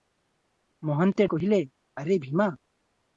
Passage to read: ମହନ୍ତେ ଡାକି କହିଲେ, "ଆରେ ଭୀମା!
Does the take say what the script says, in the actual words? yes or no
no